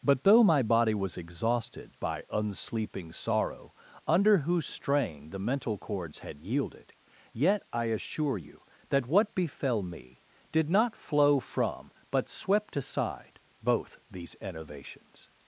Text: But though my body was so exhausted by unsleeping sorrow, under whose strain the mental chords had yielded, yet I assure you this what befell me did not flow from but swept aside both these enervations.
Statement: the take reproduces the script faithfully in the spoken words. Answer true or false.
false